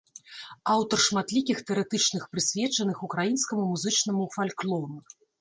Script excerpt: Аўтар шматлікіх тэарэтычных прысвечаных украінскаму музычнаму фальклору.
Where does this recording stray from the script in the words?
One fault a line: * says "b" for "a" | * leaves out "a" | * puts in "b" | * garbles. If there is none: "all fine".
all fine